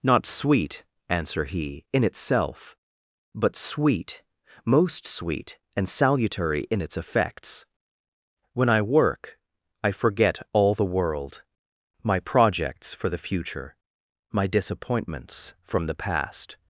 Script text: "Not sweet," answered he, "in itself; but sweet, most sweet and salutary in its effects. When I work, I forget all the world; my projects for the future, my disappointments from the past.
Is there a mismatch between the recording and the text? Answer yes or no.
yes